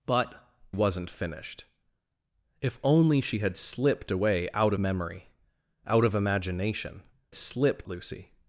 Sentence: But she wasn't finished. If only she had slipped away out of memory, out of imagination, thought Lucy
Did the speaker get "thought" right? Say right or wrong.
wrong